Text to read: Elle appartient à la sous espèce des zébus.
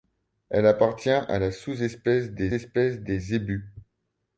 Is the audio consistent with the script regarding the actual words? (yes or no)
no